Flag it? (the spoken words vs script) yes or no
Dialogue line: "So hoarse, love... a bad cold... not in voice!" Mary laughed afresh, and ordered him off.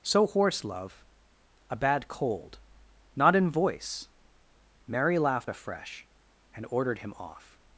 no